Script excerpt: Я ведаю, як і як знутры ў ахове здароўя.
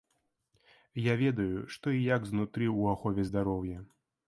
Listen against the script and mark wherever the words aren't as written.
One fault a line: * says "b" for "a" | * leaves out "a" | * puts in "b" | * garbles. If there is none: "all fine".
* says "што" for "як"